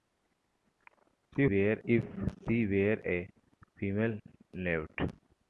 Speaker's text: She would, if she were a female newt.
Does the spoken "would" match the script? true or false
false